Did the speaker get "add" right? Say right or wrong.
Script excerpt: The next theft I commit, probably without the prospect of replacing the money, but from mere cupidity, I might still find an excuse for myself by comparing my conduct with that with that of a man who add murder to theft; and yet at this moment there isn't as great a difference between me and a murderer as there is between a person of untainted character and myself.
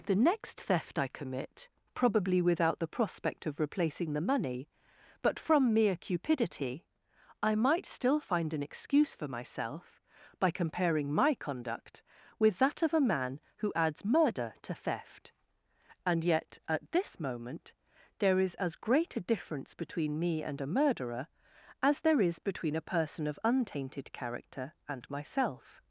wrong